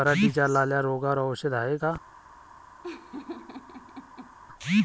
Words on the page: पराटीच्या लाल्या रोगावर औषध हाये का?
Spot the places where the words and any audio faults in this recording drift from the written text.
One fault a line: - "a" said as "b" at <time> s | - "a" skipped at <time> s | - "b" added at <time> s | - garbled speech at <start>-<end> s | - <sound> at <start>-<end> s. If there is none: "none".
- laugh at 2.8-4.4 s